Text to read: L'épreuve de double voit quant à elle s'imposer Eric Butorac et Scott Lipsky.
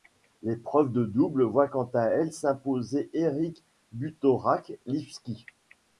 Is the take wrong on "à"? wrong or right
right